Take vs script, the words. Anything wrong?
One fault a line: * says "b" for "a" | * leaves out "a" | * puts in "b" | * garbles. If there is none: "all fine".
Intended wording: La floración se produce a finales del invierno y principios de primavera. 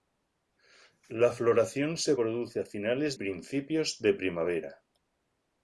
* leaves out "del invierno y"